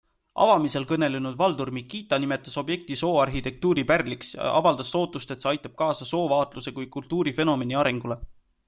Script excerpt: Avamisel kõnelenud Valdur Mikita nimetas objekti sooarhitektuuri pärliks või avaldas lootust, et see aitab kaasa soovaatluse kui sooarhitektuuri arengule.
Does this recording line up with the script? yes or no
no